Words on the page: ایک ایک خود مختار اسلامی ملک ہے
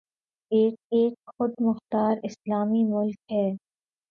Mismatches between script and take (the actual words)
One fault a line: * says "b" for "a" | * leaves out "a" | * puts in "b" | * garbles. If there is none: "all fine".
all fine